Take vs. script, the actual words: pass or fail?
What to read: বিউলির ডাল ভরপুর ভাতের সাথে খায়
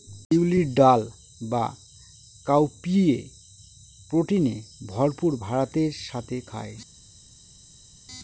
fail